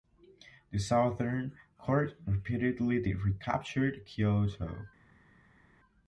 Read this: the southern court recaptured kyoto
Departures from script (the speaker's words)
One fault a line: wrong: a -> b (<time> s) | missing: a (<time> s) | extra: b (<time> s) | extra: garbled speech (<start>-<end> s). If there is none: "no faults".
extra: repeatedly (2.2 s)